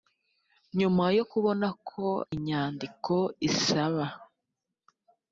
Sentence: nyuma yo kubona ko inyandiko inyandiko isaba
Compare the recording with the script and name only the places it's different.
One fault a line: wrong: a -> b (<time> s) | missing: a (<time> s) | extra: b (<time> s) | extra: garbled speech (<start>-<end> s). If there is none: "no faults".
missing: inyandiko (3.1 s)